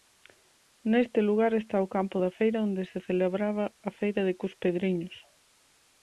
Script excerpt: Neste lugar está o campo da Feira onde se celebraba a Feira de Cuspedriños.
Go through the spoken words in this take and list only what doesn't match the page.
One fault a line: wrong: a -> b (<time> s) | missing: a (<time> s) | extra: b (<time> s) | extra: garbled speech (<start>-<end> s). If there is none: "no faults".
no faults